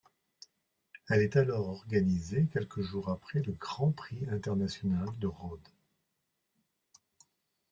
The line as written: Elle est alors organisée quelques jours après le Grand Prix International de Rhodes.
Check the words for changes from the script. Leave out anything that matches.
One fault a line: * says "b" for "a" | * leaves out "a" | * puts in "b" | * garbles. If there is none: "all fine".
all fine